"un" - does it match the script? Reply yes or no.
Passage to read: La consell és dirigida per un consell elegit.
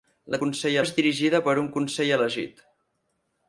yes